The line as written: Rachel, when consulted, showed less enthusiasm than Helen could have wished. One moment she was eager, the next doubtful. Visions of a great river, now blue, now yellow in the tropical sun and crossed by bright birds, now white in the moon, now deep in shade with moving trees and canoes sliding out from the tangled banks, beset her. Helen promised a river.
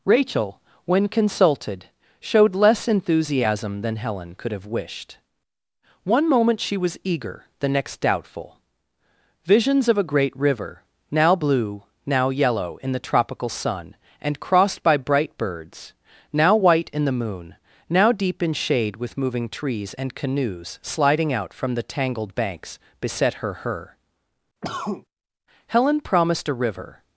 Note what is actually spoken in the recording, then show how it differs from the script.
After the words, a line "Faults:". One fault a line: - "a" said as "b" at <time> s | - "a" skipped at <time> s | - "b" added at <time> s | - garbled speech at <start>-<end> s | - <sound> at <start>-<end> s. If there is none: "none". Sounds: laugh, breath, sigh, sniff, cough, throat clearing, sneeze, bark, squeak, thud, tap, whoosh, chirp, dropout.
Rachel, when consulted, showed less enthusiasm than Helen could have wished. One moment she was eager, the next doubtful. Visions of a great river, now blue, now yellow in the tropical sun and crossed by bright birds, now white in the moon, now deep in shade with moving trees and canoes sliding out from the tangled banks, beset her her. Helen promised a river.
Faults:
- "her" added at 23.5 s
- cough at 24.6-25.1 s